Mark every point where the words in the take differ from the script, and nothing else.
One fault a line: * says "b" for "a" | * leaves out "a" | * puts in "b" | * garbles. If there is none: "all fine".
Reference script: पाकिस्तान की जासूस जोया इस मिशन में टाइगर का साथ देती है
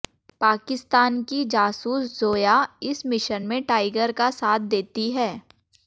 all fine